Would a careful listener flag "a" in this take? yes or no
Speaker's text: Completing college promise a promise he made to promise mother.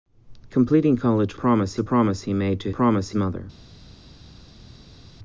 no